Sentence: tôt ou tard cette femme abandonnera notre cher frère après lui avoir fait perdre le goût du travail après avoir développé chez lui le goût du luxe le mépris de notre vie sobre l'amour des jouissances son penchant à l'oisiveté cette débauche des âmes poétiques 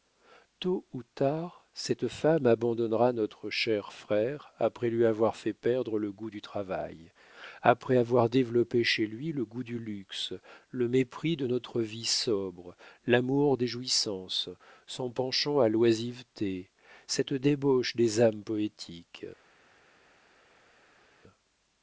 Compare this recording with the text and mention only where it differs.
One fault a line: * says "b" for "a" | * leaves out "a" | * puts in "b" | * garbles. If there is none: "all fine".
all fine